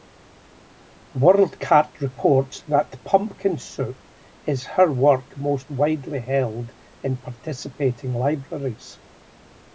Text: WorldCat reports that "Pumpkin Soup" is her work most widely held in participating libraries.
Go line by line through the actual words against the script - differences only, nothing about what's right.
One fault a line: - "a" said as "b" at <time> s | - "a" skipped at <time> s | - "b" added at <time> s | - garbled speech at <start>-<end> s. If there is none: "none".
none